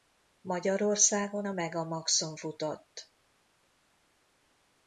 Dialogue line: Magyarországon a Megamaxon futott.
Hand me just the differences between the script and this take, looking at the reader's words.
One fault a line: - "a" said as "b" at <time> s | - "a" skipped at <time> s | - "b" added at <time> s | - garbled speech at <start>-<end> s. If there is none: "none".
none